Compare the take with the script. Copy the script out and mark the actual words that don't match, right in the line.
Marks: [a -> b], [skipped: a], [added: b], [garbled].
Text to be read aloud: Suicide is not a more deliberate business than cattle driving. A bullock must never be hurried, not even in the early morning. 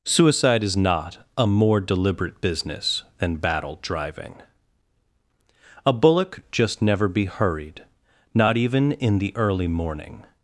Suicide is not a more deliberate business than [cattle -> battle] driving. A bullock [must -> just] never be hurried, not even in the early morning.